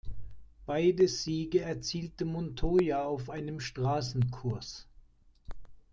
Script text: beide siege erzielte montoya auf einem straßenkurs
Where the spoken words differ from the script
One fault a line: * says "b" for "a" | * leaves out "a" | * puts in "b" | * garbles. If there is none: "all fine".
all fine